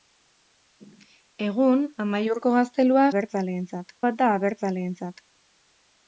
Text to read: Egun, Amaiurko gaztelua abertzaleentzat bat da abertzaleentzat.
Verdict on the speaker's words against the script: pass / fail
pass